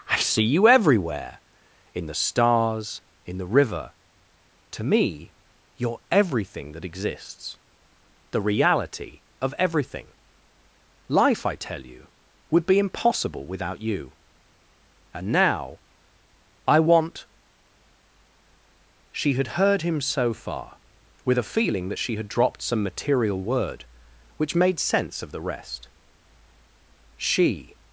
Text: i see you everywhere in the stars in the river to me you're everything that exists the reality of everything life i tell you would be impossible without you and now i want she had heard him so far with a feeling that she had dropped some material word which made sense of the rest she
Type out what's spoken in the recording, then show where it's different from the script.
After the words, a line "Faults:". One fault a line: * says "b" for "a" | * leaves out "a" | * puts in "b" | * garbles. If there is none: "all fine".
i see you everywhere in the stars in the river to me you're everything that exists the reality of everything life i tell you would be impossible without you and now i want she had heard him so far with a feeling that she had dropped some material word which made sense of the rest she
Faults:
all fine